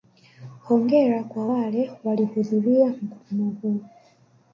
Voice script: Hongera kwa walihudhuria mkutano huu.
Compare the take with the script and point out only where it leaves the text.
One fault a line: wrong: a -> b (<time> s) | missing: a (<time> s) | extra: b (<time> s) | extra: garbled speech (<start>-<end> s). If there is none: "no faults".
extra: wale (1.5 s)